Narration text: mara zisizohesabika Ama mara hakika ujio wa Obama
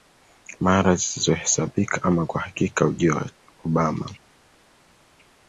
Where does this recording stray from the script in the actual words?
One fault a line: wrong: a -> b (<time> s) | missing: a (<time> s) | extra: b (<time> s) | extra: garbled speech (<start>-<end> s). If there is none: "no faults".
wrong: mara -> kwa (2.2 s)